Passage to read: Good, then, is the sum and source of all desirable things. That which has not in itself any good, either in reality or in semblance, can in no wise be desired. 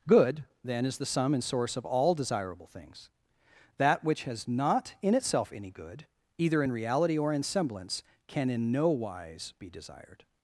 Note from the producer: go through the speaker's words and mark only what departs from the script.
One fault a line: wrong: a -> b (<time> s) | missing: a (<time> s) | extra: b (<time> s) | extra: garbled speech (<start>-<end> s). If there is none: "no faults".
no faults